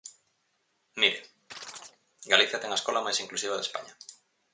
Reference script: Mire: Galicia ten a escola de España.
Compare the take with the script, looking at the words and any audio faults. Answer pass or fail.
fail